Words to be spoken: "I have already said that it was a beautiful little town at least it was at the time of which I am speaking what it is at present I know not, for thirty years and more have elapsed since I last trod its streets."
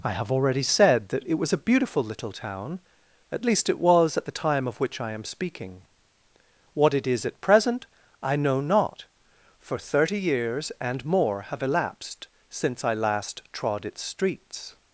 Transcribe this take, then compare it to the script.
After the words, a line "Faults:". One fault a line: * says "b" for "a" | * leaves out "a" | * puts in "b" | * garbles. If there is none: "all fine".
"I have already said that it was a beautiful little town at least it was at the time of which I am speaking what it is at present I know not, for thirty years and more have elapsed since I last trod its streets."
Faults:
all fine